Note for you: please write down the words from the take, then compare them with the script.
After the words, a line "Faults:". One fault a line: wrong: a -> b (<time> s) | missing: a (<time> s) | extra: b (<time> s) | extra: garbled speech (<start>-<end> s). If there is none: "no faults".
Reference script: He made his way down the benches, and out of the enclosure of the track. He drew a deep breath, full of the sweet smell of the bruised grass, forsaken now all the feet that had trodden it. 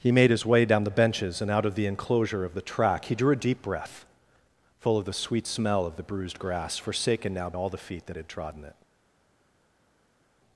He made his way down the benches, and out of the enclosure of the track. He drew a deep breath, full of the sweet smell of the bruised grass, forsaken now all the feet that had trodden it.
Faults:
no faults